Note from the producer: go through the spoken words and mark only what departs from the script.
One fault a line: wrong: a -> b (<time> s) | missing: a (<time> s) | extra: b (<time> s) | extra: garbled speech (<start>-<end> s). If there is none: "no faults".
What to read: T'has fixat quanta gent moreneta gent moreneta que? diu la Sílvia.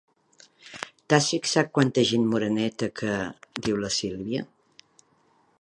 missing: gent moreneta (2.9 s)